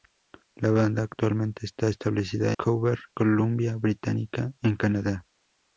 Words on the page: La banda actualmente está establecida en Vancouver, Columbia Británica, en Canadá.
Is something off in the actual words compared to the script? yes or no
yes